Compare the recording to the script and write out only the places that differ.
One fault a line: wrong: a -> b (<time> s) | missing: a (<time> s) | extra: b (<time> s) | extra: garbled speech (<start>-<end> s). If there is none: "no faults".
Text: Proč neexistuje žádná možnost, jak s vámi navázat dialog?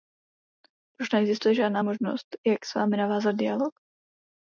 no faults